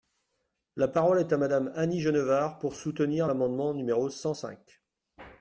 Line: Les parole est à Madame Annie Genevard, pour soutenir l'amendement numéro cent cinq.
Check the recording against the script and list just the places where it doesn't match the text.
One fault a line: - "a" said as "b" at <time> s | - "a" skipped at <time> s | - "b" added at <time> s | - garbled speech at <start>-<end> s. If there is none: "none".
- "Les" said as "La" at 0.8 s